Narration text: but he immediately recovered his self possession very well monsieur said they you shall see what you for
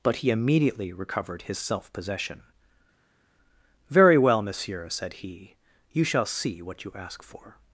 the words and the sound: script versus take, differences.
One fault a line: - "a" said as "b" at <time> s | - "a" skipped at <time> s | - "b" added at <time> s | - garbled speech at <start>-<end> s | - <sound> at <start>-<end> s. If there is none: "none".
- "they" said as "he" at 5.1 s
- "ask" added at 7.0 s